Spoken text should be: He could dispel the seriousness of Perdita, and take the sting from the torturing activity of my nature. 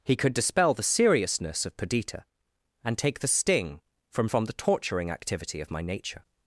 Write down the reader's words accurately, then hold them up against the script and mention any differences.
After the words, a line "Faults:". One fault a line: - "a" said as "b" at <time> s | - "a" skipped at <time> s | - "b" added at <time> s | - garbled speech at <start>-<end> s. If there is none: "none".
He could dispel the seriousness of Perdita, and take the sting from from the torturing activity of my nature.
Faults:
- "from" added at 4.2 s